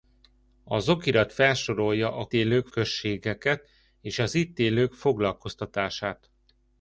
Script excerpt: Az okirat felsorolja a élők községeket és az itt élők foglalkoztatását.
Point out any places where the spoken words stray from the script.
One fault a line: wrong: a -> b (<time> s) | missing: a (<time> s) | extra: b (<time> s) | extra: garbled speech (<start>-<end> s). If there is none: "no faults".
no faults